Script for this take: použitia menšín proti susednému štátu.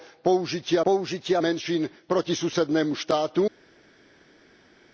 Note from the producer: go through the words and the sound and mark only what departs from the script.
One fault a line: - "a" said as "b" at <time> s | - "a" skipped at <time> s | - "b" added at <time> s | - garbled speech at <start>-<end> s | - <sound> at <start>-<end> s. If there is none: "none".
- "použitia" added at 0.9 s